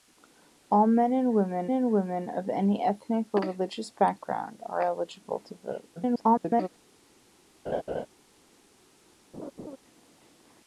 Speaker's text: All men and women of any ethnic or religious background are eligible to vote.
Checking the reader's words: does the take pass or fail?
fail